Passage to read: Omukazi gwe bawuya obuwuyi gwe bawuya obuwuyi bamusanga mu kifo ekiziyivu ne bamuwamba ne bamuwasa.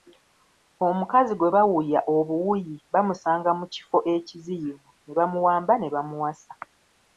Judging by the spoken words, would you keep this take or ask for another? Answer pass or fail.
fail